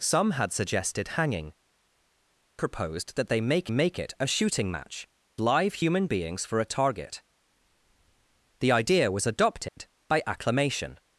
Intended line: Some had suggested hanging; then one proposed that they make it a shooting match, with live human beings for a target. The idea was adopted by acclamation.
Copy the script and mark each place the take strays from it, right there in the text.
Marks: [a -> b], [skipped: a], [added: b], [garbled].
Some had suggested hanging; [skipped: then one] proposed that they make [added: make] it a shooting match, [skipped: with] live human beings for a target. The idea was adopted by acclamation.